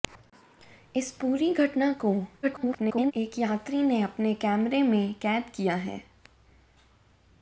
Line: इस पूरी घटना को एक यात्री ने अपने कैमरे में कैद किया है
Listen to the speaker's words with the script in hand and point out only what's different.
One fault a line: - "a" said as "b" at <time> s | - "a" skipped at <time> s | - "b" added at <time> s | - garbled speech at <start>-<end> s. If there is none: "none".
- garbled speech at 2.4-3.1 s